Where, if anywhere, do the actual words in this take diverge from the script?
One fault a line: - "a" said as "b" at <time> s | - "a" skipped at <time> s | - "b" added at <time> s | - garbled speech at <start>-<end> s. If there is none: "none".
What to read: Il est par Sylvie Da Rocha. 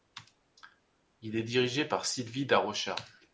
- "dirigé" added at 1.4 s